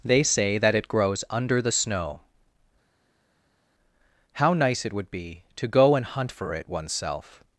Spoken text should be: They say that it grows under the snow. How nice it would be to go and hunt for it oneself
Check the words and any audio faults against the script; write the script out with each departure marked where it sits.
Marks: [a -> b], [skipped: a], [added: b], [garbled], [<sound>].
They say that it grows under the snow. How nice it would be to go and hunt for it oneself